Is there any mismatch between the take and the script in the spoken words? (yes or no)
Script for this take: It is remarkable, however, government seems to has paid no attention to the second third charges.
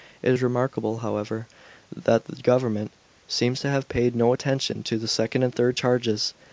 yes